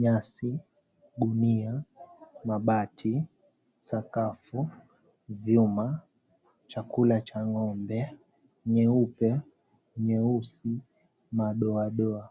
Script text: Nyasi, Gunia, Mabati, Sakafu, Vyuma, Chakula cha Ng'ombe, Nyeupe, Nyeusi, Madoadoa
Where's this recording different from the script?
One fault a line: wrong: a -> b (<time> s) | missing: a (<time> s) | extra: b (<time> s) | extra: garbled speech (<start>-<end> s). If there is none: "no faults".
no faults